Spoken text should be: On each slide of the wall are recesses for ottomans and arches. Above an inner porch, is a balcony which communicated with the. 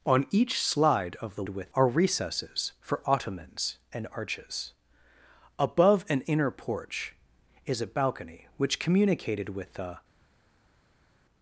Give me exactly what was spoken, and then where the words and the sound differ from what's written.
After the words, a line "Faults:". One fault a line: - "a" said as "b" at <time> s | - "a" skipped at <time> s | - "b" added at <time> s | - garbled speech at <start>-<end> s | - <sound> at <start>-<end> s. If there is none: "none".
On each slide of the with are recesses for ottomans and arches. Above an inner porch, is a balcony which communicated with the.
Faults:
- "wall" said as "with" at 1.5 s